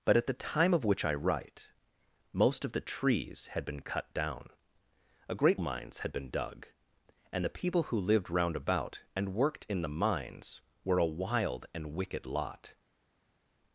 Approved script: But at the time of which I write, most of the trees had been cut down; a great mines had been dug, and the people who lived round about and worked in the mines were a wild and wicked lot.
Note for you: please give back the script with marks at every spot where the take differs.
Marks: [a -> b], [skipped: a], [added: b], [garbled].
But at the time of which I write, most of the trees had been cut down; a great mines had been dug, and the people who lived round about and worked in the mines were a wild and wicked lot.